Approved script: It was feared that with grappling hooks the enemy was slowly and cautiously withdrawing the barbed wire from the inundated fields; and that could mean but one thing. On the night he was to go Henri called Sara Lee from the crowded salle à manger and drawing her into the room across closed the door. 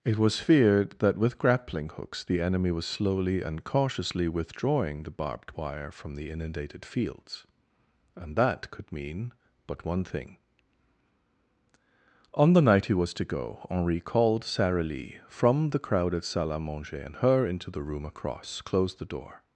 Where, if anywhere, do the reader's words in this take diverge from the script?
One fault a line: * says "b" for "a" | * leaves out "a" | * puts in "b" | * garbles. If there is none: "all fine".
* leaves out "drawing"